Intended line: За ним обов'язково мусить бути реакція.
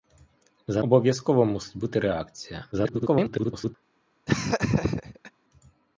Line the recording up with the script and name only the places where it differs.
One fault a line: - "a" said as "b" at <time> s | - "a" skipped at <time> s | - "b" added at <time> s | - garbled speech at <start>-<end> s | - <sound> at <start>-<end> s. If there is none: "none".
- "ним" skipped at 0.8 s
- garbled speech at 2.7-3.8 s
- laugh at 4.3-5.3 s